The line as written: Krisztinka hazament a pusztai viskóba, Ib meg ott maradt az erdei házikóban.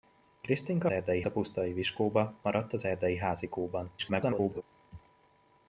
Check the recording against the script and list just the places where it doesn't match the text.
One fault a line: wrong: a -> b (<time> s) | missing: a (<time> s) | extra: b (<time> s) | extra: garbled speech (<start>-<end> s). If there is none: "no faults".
wrong: hazament -> erdei (0.9 s)
missing: Ib meg ott (2.3 s)
extra: garbled speech (4.0-4.6 s)